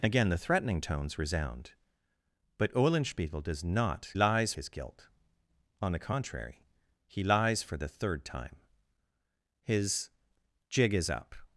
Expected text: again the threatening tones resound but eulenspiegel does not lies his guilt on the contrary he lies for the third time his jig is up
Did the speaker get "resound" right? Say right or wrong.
right